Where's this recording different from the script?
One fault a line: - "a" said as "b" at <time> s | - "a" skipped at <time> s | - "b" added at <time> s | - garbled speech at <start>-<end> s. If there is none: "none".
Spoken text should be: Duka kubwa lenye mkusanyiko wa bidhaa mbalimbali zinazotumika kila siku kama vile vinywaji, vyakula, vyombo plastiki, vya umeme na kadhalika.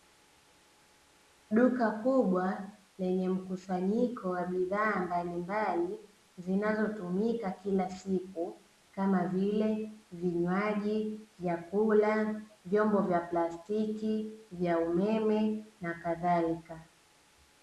- "vya" added at 13.0 s